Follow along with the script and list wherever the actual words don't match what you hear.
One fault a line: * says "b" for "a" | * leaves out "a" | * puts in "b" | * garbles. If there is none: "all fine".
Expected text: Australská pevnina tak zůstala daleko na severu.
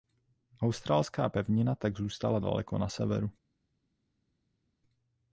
all fine